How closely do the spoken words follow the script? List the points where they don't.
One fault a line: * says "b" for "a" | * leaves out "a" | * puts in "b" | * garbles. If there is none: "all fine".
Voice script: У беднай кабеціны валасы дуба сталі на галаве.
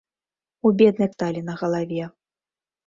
* leaves out "кабеціны валасы дуба"